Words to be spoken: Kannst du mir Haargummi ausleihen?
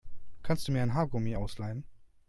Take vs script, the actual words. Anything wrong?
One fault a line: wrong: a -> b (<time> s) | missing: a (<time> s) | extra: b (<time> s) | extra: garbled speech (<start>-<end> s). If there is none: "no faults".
extra: ein (0.8 s)